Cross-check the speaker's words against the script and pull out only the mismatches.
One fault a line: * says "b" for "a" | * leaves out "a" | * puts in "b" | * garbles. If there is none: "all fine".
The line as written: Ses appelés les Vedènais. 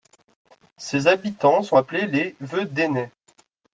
* puts in "habitants sont"